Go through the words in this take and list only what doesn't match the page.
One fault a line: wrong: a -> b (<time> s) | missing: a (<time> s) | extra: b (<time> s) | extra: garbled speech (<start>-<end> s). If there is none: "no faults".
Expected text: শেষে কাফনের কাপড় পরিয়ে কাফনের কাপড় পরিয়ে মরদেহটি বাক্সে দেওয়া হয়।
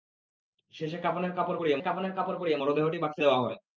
no faults